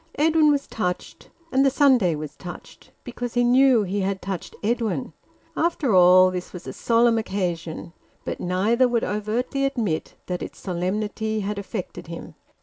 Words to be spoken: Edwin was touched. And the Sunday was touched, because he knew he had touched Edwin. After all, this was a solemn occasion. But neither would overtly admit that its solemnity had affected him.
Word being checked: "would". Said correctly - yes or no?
yes